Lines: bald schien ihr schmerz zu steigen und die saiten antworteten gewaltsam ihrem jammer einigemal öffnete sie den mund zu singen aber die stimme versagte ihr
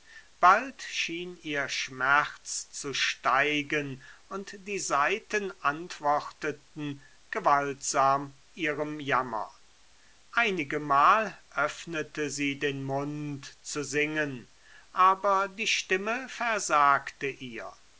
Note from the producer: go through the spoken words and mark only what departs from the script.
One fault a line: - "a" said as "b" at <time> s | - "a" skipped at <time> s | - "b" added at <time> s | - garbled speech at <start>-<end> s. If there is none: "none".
none